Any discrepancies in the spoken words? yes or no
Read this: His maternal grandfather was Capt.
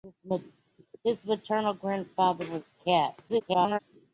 yes